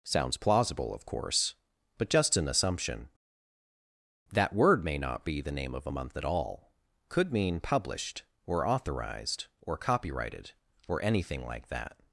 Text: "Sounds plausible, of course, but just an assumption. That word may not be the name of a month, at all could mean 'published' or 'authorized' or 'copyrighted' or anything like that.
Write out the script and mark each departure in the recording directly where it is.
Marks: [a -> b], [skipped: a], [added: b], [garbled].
"Sounds plausible, of course, but just an assumption. That word may not be the name of a month, at all could mean 'published' or 'authorized' or 'copyrighted' or anything like that.